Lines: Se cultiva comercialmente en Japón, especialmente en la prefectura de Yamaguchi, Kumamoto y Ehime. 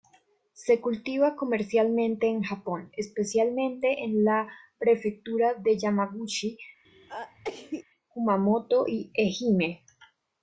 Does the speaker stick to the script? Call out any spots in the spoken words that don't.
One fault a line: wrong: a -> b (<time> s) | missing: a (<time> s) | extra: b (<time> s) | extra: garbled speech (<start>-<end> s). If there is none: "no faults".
no faults